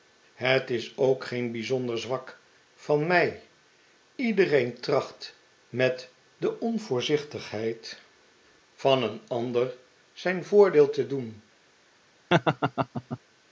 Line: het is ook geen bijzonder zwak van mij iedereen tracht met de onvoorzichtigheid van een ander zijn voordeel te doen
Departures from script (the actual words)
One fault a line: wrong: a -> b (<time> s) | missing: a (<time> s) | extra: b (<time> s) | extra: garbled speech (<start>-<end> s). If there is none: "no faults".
no faults